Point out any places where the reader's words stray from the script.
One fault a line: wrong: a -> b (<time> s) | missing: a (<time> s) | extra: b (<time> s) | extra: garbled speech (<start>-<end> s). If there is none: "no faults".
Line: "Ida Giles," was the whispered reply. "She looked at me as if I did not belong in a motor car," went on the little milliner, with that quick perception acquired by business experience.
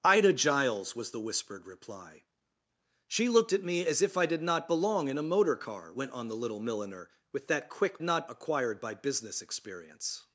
wrong: perception -> not (8.0 s)